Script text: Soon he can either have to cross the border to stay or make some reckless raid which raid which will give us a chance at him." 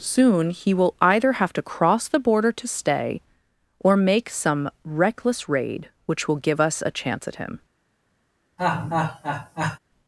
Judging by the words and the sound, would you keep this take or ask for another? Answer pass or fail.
fail